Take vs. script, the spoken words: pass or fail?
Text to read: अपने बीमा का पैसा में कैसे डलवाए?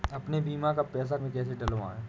pass